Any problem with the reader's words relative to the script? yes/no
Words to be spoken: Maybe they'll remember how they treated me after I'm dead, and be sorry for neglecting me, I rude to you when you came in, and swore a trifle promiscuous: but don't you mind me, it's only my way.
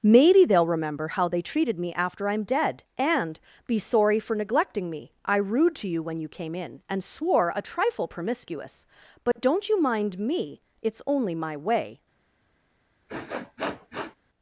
no